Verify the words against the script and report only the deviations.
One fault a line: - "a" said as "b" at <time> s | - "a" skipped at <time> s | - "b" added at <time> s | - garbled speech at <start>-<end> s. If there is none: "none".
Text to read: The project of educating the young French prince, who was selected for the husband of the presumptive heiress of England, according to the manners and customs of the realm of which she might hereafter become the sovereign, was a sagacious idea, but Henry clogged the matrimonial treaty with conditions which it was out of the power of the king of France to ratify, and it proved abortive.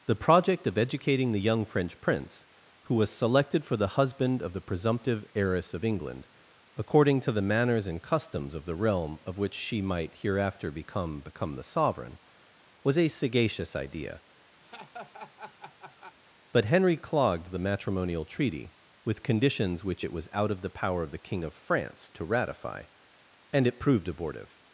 - "become" added at 11.2 s